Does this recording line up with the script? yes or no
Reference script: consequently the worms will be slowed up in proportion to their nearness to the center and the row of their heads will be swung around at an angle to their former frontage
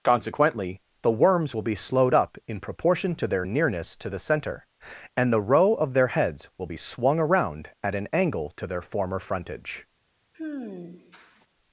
yes